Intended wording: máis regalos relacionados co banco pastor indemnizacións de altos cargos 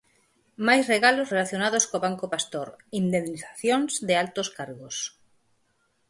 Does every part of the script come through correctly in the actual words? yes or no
yes